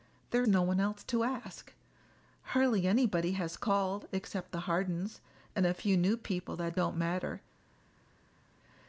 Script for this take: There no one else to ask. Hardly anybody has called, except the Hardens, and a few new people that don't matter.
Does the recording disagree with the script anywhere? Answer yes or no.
no